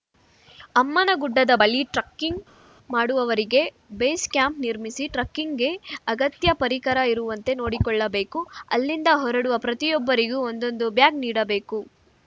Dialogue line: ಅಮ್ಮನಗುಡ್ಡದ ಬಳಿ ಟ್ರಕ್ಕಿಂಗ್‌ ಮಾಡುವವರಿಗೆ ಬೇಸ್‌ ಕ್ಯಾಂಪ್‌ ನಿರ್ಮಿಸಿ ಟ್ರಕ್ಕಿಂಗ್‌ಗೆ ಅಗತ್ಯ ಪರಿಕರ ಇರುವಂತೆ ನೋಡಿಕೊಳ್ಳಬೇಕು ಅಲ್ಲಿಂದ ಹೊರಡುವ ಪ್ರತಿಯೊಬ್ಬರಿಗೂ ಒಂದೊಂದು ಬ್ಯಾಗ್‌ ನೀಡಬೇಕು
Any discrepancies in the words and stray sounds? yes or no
no